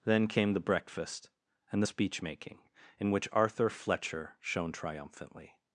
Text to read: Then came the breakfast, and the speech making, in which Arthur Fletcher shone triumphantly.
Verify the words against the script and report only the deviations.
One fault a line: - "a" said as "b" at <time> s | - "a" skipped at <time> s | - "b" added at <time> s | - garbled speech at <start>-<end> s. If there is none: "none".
none